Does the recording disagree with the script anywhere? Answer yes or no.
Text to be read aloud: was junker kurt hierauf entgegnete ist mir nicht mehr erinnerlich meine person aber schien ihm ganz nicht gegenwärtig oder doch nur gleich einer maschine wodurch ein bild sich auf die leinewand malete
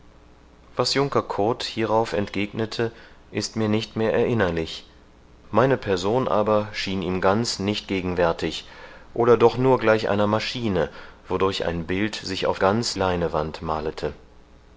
yes